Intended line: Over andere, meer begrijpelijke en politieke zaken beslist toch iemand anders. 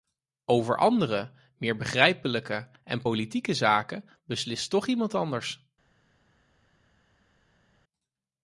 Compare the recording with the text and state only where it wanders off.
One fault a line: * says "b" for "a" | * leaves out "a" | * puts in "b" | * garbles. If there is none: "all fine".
all fine